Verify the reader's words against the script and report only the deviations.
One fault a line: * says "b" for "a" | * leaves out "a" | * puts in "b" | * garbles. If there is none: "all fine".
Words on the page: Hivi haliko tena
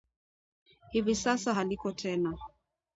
* puts in "sasa"